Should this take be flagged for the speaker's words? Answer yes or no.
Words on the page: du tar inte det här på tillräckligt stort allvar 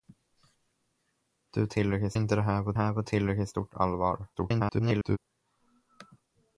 yes